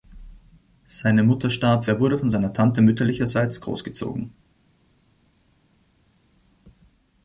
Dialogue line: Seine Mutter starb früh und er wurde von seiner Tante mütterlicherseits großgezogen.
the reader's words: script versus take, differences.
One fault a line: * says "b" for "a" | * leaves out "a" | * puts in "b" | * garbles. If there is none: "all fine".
* leaves out "früh und"